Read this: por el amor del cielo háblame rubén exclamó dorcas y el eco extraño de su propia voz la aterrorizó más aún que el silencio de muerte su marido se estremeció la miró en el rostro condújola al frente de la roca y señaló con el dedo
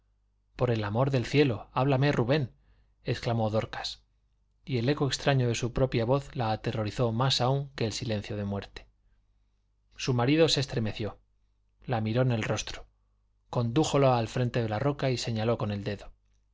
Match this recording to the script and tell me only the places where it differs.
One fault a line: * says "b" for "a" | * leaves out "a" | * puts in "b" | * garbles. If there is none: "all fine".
all fine